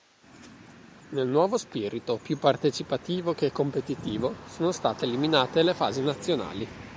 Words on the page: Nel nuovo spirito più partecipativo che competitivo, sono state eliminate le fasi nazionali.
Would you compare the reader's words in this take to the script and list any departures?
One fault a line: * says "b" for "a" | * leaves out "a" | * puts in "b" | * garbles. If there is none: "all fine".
all fine